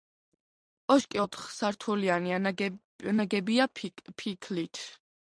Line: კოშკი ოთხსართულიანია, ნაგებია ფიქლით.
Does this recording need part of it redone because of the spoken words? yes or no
no